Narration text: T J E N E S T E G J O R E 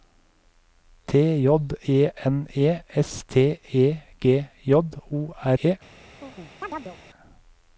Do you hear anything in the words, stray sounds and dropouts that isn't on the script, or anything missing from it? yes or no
yes